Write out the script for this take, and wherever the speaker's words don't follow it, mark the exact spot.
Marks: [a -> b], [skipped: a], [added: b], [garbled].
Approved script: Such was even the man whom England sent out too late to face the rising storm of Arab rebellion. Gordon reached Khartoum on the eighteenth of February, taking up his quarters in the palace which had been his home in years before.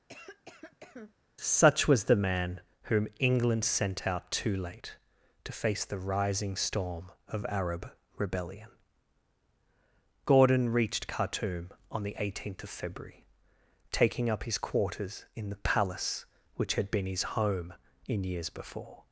Such was [skipped: even] the man whom England sent out too late to face the rising storm of Arab rebellion. Gordon reached Khartoum on the eighteenth of February, taking up his quarters in the palace which had been his home in years before.